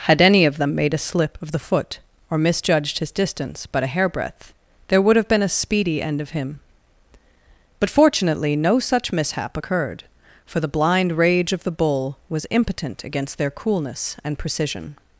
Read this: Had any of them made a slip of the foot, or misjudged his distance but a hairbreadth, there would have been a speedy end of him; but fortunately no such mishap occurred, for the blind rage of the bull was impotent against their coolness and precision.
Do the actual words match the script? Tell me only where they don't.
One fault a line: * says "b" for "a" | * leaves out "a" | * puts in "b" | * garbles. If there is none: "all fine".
all fine